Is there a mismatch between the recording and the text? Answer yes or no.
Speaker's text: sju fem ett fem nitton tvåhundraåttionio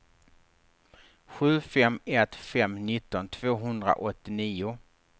no